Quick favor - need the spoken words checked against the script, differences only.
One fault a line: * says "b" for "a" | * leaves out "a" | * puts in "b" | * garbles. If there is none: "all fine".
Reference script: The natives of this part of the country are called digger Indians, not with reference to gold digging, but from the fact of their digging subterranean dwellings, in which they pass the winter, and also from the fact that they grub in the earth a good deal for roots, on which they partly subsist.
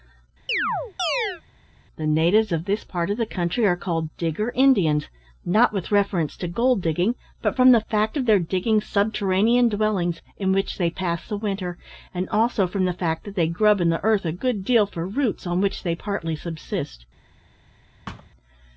all fine